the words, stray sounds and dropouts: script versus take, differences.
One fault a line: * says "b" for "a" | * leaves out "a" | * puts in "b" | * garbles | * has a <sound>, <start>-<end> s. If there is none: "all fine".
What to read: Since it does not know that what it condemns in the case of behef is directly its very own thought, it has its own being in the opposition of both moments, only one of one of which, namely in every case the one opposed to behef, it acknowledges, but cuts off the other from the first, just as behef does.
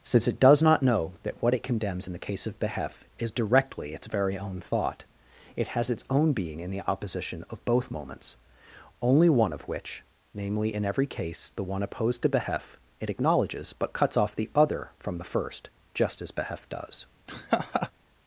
* leaves out "one of"
* has a laugh, 17.3-17.9 s